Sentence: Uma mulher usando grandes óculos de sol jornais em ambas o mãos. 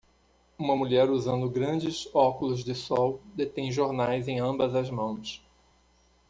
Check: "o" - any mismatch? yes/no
yes